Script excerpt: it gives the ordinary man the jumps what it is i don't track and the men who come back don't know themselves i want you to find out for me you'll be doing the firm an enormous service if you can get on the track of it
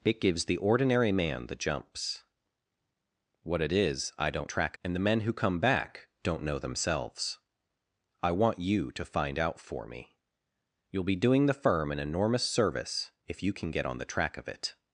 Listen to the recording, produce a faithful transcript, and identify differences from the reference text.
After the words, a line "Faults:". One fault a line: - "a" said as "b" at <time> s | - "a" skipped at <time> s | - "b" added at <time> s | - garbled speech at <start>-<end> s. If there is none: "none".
it gives the ordinary man the jumps what it is i don't track and the men who come back don't know themselves i want you to find out for me you'll be doing the firm an enormous service if you can get on the track of it
Faults:
none